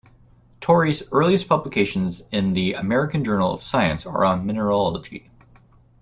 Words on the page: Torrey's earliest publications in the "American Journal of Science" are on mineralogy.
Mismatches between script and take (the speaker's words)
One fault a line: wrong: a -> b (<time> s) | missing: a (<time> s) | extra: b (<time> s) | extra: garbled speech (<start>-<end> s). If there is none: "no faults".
no faults